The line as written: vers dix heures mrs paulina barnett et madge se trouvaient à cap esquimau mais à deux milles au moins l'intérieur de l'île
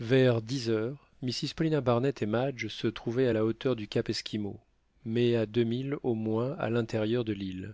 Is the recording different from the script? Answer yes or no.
yes